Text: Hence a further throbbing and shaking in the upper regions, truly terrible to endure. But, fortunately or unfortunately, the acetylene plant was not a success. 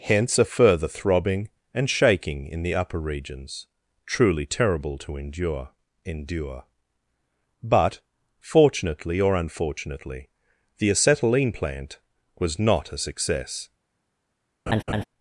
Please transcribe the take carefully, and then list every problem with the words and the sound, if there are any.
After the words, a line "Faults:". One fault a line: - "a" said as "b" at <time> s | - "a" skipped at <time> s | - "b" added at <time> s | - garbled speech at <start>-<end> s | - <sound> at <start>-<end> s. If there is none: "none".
Hence a further throbbing and shaking in the upper regions, truly terrible to endure endure. But, fortunately or unfortunately, the acetylene plant was not a success.
Faults:
- "endure" added at 6.1 s
- laugh at 14.7-15.0 s